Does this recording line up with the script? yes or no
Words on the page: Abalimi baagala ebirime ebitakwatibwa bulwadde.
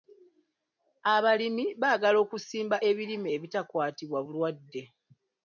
no